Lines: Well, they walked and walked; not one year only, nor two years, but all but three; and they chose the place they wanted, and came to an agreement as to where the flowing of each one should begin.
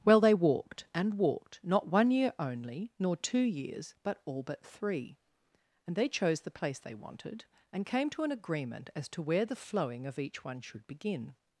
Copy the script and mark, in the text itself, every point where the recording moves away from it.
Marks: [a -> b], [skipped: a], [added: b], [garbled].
Well, they walked and walked; not one year only, nor two years, but all but three; and they chose the place they wanted, and came to an agreement as to where the flowing of each one should begin.